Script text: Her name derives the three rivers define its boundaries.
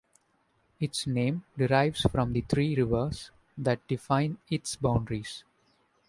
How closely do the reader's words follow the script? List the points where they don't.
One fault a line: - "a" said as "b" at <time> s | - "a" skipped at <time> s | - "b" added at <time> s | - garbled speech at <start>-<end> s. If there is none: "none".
- "Her" said as "Its" at 0.8 s
- "from" added at 2.1 s
- "that" added at 3.6 s